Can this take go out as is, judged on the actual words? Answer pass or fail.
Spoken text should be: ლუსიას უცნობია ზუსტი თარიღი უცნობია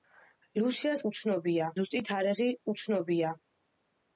pass